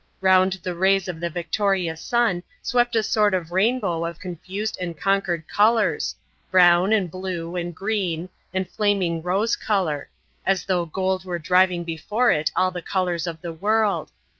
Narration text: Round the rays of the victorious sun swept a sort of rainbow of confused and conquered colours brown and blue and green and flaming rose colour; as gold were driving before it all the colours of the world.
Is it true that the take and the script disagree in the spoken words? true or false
true